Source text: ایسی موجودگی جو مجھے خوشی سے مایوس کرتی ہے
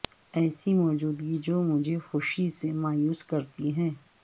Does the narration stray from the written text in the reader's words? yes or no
no